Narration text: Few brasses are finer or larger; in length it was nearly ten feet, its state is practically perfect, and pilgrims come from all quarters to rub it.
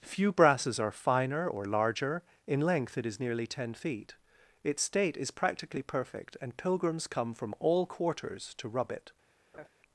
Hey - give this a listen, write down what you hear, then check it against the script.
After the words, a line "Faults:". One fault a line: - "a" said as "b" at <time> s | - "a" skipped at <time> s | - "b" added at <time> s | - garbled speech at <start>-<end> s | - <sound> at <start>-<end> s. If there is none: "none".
Few brasses are finer or larger; in length it is nearly ten feet, its state is practically perfect, and pilgrims come from all quarters to rub it.
Faults:
- "was" said as "is" at 3.0 s
- laugh at 9.5-9.7 s